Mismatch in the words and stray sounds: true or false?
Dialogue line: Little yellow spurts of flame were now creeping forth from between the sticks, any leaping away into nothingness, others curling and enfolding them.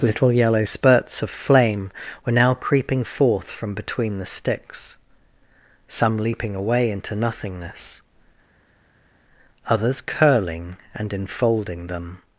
true